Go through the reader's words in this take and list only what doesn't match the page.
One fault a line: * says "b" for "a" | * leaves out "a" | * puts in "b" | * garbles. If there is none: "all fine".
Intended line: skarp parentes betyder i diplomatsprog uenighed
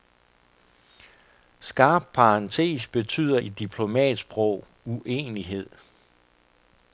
all fine